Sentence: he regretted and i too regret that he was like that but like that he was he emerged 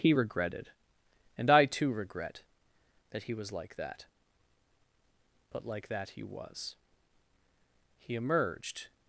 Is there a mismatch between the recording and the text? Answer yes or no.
no